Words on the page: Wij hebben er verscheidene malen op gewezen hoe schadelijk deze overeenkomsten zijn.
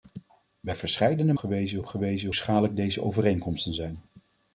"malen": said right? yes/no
no